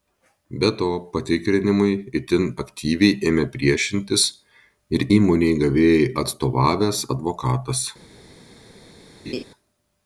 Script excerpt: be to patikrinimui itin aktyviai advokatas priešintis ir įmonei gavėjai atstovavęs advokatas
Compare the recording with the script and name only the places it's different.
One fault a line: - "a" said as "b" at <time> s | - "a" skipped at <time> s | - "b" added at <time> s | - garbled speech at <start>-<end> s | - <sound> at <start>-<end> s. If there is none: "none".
- "advokatas" said as "ėmė" at 3.3 s
- laugh at 9.3-9.4 s